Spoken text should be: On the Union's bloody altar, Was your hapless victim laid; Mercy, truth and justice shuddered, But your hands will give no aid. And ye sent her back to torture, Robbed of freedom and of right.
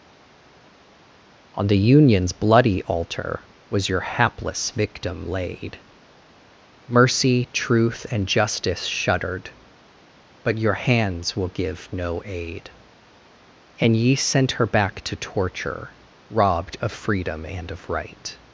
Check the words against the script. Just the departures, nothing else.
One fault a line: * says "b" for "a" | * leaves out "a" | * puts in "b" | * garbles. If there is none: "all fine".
all fine